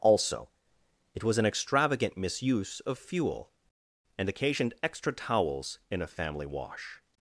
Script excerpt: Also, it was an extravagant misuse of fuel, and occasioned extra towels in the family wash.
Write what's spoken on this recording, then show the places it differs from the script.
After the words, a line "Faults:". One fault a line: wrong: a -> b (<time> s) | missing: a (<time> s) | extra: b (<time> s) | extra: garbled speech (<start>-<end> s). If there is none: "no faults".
Also, it was an extravagant misuse of fuel, and occasioned extra towels in a family wash.
Faults:
wrong: the -> a (6.0 s)